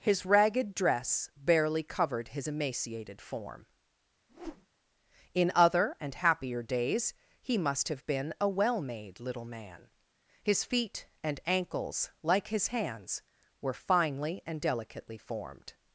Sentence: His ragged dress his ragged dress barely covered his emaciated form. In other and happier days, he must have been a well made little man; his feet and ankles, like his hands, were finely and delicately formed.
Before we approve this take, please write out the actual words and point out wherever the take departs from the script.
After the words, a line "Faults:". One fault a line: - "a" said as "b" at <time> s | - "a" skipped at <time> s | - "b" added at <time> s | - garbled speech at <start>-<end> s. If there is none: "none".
His ragged dress barely covered his emaciated form. In other and happier days, he must have been a well made little man; his feet and ankles, like his hands, were finely and delicately formed.
Faults:
- "his ragged dress" skipped at 1.3 s